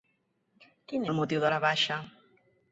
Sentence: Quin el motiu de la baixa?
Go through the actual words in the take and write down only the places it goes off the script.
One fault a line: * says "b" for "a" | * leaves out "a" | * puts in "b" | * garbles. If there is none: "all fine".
all fine